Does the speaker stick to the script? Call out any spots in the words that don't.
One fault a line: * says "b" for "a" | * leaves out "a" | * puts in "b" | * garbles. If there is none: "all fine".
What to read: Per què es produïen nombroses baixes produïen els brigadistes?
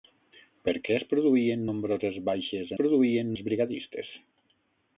all fine